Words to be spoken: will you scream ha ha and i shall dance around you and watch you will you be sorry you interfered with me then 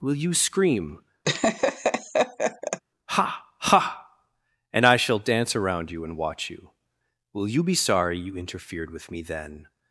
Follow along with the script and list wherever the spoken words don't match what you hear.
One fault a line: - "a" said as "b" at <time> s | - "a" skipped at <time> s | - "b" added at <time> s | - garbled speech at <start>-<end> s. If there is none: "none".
none